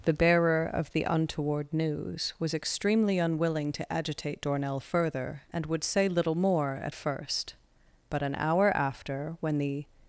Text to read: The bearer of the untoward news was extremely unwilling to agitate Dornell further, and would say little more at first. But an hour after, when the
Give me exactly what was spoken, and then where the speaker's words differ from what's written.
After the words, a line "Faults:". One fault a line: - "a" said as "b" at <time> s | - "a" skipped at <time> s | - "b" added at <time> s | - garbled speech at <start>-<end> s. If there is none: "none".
The bearer of the untoward news was extremely unwilling to agitate Dornell further, and would say little more at first. But an hour after, when the
Faults:
none